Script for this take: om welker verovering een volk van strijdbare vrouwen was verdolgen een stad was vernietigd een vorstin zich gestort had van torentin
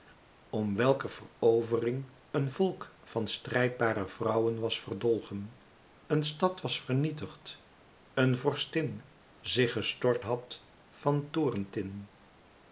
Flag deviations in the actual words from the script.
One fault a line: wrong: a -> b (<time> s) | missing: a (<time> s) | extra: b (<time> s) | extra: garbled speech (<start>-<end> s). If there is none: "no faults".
no faults